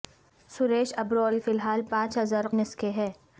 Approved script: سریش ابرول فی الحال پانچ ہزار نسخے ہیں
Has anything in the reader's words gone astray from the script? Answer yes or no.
no